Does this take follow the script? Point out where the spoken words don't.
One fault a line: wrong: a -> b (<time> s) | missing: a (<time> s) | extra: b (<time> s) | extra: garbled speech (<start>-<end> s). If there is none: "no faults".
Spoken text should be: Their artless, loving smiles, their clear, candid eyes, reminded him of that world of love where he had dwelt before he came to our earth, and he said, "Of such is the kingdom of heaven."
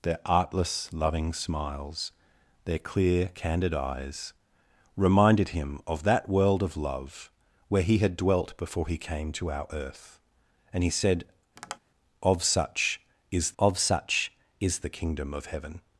extra: of such is (13.6 s)